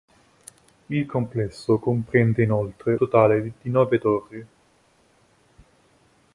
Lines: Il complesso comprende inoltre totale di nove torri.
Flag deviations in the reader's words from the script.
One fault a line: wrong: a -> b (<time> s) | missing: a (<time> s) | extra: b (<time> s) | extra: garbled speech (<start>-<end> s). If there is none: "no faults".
no faults